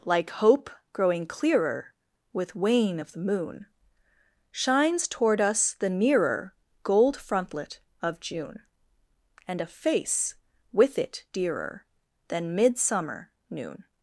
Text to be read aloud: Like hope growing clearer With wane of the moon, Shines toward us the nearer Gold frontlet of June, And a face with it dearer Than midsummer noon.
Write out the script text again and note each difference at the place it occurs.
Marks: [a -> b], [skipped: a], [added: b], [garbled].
Like hope growing clearer With wane of the moon, Shines toward us the nearer Gold frontlet of June, And a face with it dearer Than midsummer noon.